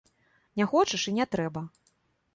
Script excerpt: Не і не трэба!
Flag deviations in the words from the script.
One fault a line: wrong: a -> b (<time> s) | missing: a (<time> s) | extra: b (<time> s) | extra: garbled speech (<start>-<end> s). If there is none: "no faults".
extra: хочаш (0.7 s)